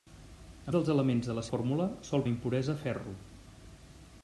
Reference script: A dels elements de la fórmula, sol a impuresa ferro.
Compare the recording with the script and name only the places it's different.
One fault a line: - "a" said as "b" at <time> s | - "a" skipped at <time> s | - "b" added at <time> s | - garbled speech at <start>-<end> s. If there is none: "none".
none